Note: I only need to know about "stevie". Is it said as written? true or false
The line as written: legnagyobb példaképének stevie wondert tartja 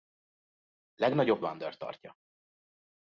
false